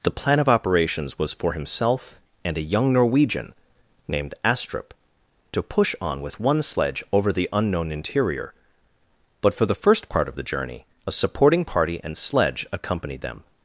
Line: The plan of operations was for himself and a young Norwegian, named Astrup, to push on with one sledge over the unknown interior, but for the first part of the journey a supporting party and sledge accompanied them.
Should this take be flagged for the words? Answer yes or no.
no